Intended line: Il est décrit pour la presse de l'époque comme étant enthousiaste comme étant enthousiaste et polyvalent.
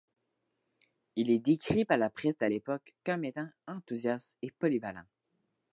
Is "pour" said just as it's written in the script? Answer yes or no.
no